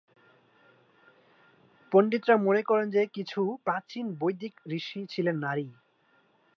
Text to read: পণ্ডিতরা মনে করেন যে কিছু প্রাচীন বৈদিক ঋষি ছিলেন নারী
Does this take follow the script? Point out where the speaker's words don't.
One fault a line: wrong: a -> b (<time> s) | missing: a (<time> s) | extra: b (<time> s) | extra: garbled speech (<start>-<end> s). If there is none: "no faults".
no faults